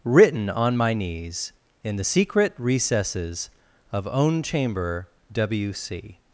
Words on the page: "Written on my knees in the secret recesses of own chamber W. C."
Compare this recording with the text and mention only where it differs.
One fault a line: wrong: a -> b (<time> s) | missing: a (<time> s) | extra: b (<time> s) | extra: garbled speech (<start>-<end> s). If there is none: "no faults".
no faults